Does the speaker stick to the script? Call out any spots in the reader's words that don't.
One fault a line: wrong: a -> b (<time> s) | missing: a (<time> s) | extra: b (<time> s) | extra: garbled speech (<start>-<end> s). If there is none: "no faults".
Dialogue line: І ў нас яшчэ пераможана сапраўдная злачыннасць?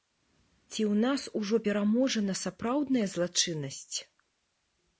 wrong: І -> Ці (0.7 s)
wrong: яшчэ -> ужо (1.4 s)